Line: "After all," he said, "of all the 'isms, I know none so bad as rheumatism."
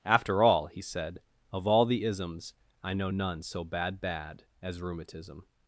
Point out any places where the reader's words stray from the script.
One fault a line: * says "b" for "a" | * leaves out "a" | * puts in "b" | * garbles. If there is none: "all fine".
* puts in "bad"